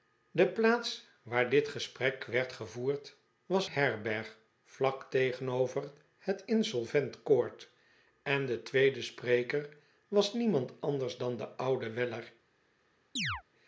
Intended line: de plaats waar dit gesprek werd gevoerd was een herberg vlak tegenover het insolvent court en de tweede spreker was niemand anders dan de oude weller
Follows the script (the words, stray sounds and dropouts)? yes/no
no